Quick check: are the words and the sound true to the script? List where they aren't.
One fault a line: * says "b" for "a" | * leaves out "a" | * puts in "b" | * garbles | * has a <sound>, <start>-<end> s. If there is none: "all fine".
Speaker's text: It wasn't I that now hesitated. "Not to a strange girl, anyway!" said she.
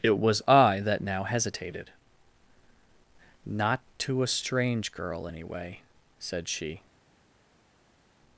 * says "was" for "wasn't"